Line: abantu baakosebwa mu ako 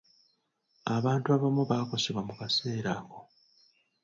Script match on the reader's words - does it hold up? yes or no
no